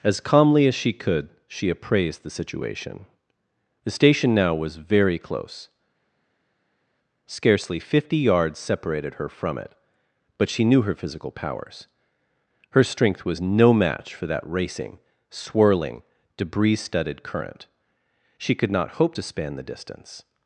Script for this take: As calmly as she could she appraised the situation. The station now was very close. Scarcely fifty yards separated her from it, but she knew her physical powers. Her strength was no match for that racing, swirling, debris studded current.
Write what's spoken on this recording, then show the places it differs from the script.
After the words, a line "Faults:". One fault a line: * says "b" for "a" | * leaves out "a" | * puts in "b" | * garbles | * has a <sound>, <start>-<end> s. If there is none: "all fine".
As calmly as she could she appraised the situation. The station now was very close. Scarcely fifty yards separated her from it, but she knew her physical powers. Her strength was no match for that racing, swirling, debris studded current. She could not hope to span the distance
Faults:
* puts in "She could not hope to span the distance"